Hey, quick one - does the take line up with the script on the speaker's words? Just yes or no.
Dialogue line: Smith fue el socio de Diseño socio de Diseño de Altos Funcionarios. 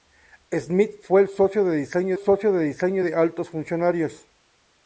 yes